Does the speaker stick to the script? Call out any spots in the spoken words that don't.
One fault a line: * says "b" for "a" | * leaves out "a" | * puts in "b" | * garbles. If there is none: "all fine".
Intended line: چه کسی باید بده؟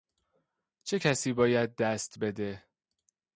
* puts in "دست"